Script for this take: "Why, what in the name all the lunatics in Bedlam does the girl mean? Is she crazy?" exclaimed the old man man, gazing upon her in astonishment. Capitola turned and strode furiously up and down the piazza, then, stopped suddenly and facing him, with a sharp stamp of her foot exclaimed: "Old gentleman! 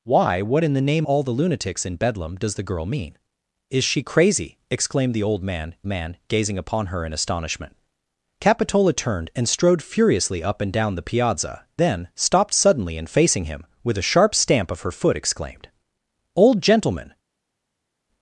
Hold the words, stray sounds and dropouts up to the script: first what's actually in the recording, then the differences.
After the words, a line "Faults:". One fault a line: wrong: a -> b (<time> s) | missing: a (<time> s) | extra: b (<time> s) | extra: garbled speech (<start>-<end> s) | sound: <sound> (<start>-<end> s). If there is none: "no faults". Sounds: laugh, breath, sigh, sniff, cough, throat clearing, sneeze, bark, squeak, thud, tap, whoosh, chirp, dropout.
"Why, what in the name all the lunatics in Bedlam does the girl mean? Is she crazy?" exclaimed the old man man, gazing upon her in astonishment. Capitola turned and strode furiously up and down the piazza, then, stopped suddenly and facing him, with a sharp stamp of her foot exclaimed: "Old gentleman!
Faults:
no faults